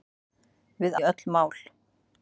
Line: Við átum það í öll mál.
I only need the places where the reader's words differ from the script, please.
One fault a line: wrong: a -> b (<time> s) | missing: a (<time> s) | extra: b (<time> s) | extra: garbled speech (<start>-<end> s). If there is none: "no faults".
missing: átum það (1.0 s)